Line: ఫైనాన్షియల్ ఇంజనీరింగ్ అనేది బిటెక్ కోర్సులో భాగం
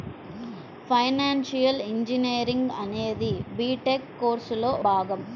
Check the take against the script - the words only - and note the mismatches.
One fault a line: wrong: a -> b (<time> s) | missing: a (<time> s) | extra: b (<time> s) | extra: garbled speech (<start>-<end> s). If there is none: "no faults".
no faults